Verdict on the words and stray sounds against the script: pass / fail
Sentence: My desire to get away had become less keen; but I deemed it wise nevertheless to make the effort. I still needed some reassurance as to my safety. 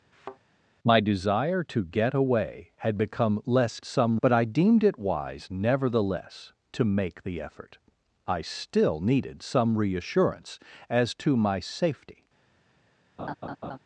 fail